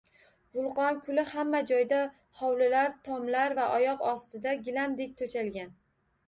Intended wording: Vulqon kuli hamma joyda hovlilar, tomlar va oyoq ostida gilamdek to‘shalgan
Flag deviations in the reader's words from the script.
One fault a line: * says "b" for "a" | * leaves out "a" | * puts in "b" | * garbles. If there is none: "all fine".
all fine